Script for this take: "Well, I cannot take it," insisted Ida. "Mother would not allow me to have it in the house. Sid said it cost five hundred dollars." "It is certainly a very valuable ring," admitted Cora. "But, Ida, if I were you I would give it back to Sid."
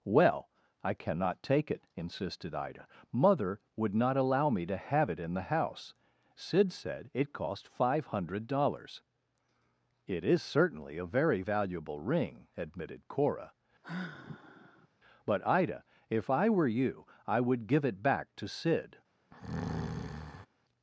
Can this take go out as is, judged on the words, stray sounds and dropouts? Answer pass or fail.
fail